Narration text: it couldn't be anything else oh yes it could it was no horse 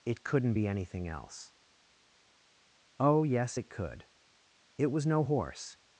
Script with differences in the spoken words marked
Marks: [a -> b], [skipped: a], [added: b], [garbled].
it couldn't be anything else oh yes it could it was no horse